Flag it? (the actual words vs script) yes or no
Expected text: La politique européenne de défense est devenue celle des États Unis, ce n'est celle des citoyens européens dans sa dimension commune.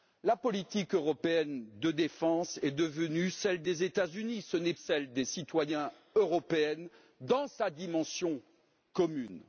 no